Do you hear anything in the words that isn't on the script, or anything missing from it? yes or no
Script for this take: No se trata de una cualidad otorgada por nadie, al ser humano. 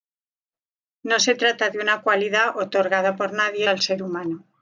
no